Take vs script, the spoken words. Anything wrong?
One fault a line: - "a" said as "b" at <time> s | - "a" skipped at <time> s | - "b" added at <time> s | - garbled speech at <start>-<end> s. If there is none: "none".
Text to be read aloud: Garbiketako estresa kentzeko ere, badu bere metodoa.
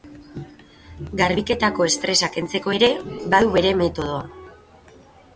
none